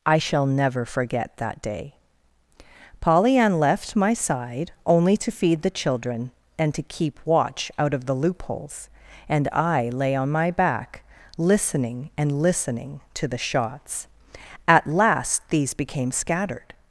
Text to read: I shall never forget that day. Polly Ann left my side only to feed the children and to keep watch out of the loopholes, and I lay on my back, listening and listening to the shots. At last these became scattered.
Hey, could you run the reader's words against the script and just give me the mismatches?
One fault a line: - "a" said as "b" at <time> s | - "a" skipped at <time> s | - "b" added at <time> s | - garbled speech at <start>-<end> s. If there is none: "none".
none